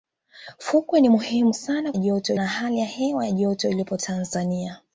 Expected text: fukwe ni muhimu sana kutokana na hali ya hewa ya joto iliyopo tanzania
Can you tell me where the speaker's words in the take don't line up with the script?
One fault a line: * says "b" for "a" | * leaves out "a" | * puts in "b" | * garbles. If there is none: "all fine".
* says "joto" for "kutokana"